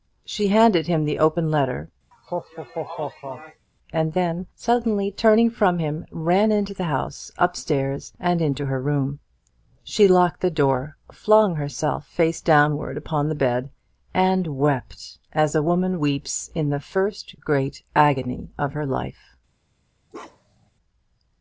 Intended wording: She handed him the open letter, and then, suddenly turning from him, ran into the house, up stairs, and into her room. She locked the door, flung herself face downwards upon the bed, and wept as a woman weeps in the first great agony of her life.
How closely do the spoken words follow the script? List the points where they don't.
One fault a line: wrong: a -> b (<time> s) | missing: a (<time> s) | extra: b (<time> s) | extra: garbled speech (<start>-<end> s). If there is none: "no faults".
no faults